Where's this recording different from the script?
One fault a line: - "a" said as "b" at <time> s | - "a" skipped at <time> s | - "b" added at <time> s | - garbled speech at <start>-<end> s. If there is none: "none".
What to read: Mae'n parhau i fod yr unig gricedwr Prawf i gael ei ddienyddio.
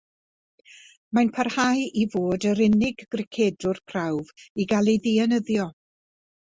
none